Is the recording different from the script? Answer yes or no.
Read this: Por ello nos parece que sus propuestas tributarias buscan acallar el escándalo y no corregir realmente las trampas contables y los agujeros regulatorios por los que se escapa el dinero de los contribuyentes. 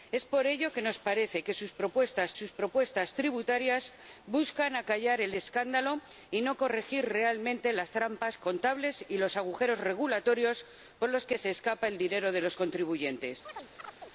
yes